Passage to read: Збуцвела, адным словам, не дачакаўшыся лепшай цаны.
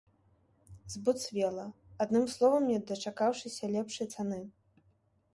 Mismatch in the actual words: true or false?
false